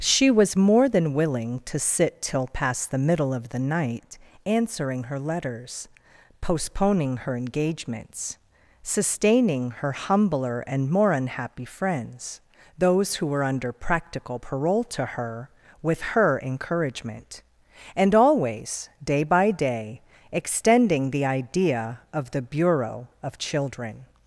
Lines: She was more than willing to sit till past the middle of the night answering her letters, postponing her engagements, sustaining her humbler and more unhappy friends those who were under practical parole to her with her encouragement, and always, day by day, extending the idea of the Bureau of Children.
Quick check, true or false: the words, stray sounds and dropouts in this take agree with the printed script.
true